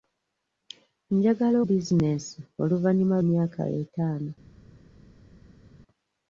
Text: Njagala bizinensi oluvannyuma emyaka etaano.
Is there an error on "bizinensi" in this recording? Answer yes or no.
no